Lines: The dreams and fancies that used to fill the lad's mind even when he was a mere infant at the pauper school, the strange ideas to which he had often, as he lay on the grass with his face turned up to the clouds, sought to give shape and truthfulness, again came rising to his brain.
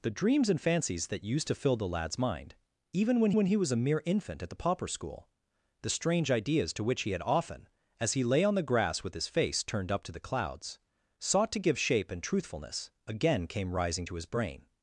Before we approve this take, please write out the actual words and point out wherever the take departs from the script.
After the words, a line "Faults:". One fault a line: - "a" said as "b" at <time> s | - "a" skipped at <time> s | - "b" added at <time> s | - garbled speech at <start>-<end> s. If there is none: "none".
The dreams and fancies that used to fill the lad's mind even when when he was a mere infant at the pauper school, the strange ideas to which he had often, as he lay on the grass with his face turned up to the clouds, sought to give shape and truthfulness, again came rising to his brain.
Faults:
- "when" added at 3.4 s